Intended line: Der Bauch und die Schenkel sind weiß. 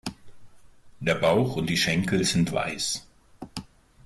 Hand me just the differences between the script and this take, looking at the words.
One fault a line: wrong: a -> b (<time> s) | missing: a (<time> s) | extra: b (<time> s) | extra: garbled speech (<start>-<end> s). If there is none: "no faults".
no faults